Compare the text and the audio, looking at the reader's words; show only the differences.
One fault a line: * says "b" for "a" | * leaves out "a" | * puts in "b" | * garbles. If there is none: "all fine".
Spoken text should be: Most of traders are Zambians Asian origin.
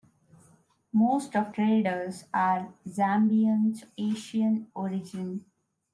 all fine